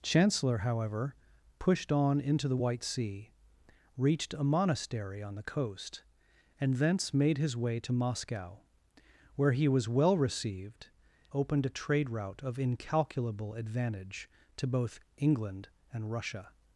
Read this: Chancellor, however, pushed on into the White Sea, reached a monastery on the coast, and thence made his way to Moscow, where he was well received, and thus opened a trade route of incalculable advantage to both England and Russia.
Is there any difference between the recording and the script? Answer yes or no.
yes